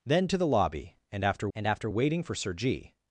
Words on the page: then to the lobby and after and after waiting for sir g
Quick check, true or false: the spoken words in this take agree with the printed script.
true